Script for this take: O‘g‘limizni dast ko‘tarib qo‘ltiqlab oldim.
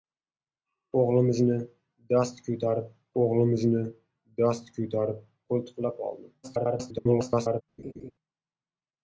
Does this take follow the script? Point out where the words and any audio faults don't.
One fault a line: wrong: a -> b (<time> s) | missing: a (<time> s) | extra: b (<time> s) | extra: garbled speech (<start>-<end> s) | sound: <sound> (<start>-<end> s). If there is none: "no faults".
extra: o‘g‘limizni dast ko‘tarib (3.2 s)
extra: garbled speech (6.4-7.6 s)
sound: laugh (7.8-8.1 s)